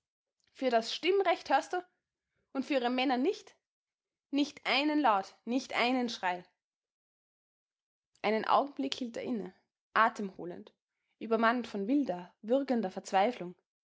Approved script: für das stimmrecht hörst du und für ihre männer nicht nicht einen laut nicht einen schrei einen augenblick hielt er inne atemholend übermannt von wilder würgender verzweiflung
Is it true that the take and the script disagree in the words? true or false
false